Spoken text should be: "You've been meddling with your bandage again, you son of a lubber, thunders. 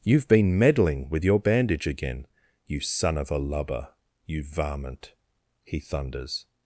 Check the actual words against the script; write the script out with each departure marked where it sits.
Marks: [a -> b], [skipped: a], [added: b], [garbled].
"You've been meddling with your bandage again, you son of a lubber, [added: you varmint he] thunders.